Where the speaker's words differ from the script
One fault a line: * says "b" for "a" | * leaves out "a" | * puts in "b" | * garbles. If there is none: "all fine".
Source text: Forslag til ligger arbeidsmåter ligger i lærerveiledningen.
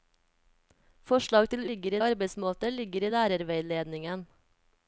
all fine